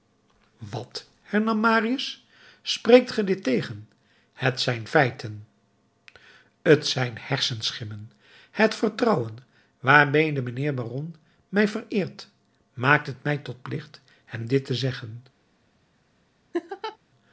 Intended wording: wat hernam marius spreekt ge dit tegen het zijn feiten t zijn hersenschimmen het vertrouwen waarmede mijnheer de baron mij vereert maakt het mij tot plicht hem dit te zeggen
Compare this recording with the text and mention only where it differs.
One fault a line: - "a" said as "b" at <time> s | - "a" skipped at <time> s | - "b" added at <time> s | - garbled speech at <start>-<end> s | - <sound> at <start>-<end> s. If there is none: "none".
- laugh at 16.5-17.0 s